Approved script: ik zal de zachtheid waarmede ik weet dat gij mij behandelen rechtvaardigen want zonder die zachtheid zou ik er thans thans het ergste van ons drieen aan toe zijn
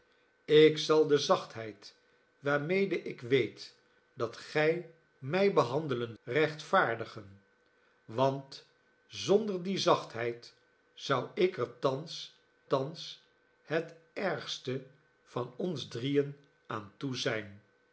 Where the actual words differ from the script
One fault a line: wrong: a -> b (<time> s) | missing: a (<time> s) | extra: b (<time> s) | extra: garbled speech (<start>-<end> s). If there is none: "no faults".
no faults